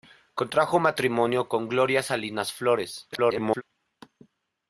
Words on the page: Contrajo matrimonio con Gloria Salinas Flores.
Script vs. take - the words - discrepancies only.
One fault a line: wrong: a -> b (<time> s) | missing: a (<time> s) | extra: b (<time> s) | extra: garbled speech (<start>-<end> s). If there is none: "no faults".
extra: garbled speech (3.1-3.6 s)